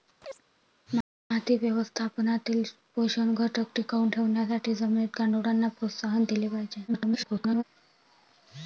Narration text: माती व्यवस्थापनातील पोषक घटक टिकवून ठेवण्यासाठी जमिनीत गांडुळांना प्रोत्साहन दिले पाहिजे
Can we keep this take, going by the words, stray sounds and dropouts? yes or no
no